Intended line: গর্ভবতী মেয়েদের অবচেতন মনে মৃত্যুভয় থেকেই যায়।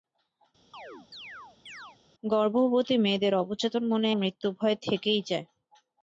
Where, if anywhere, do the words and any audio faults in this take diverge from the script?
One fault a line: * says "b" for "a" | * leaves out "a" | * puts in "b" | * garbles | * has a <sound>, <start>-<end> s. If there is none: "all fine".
* has a chirp, 0.7-2.0 s